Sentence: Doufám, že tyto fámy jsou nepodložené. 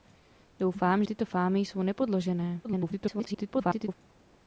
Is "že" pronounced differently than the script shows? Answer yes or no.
yes